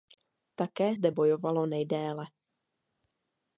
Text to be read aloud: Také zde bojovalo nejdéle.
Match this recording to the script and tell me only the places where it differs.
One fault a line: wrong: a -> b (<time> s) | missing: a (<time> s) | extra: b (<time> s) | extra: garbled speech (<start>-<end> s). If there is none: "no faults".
no faults